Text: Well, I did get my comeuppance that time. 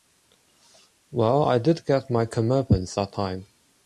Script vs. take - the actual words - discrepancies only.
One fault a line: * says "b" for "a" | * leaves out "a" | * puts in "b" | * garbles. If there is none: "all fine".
all fine